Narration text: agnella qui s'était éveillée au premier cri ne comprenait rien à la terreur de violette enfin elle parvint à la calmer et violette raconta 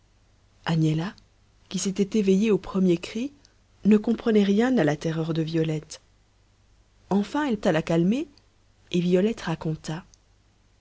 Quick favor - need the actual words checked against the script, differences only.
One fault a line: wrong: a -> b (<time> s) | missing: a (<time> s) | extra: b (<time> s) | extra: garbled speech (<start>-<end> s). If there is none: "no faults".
missing: parvint (7.6 s)